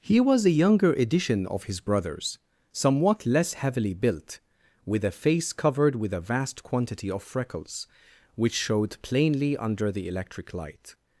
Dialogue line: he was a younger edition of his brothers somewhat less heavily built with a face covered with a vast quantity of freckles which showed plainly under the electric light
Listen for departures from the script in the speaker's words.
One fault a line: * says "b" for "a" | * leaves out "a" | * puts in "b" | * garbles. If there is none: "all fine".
all fine